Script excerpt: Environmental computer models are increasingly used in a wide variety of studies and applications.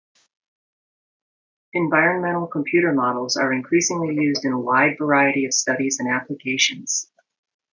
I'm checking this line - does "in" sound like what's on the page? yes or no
yes